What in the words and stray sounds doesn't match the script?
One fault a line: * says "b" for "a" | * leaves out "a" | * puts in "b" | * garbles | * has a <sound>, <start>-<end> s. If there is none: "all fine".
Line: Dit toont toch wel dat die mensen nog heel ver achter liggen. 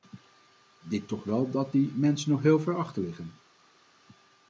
* leaves out "toont"